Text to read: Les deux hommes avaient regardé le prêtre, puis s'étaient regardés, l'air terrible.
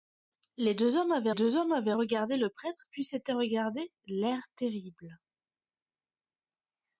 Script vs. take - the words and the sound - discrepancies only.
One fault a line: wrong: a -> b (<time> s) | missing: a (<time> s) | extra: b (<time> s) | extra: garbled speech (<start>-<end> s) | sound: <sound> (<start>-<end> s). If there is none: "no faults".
extra: deux hommes avaient (1.3 s)